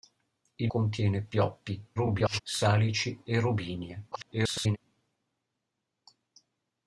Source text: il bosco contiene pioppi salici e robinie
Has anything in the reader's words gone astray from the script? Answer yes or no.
yes